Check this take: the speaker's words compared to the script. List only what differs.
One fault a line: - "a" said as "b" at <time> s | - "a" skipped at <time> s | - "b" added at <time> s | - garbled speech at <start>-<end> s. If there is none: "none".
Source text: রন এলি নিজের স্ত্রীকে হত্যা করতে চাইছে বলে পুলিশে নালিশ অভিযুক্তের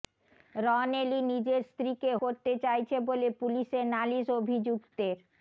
- "হত্যা" skipped at 2.1 s